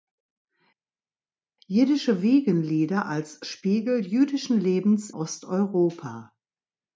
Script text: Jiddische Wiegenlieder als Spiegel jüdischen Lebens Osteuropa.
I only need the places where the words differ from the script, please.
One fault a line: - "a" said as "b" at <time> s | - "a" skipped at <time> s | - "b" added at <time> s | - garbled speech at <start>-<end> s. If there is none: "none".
none